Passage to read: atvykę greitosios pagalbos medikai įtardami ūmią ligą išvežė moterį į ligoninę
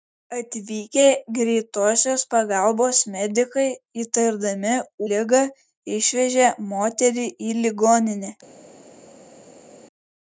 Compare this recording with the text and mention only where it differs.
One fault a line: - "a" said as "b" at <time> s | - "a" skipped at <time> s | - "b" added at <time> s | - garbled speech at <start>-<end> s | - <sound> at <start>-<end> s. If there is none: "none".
- "ūmią" skipped at 4.7 s